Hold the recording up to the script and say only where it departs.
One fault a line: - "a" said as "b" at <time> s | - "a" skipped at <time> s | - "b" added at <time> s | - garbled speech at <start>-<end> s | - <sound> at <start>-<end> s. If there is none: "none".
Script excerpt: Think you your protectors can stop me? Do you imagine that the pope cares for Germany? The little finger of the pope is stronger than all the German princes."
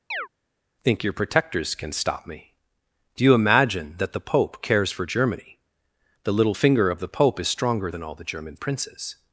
- chirp at 0.1-0.3 s
- "you" skipped at 1.0 s